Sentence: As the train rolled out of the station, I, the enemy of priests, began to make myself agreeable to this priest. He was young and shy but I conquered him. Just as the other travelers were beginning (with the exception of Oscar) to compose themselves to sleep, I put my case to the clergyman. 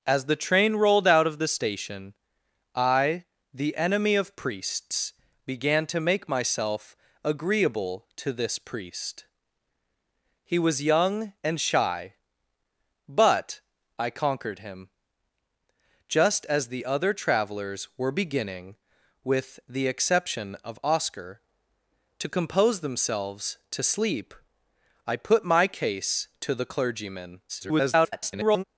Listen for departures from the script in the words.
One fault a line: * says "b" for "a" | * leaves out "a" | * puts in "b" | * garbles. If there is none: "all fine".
* garbles